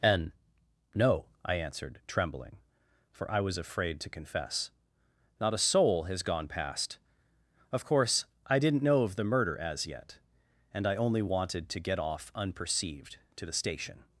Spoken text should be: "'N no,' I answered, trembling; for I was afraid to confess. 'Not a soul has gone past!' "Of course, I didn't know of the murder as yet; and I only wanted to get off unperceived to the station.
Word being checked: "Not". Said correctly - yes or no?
yes